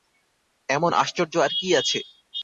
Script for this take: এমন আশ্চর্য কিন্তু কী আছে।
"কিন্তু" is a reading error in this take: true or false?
true